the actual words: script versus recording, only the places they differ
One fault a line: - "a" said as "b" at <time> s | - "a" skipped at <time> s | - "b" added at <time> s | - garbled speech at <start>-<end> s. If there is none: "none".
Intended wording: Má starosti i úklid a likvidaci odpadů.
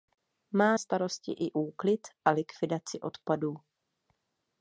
none